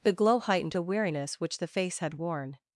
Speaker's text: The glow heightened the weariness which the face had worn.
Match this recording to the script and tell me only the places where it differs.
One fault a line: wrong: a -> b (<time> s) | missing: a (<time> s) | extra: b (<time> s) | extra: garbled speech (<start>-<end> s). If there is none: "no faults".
no faults